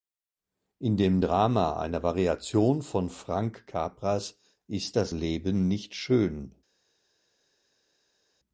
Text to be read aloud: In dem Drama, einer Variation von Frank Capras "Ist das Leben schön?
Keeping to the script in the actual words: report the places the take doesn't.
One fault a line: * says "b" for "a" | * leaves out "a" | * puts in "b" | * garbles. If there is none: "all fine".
* puts in "nicht"